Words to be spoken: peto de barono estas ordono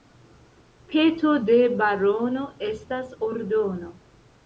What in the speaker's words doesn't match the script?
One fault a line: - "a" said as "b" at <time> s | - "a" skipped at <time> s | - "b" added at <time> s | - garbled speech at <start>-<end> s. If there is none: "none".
none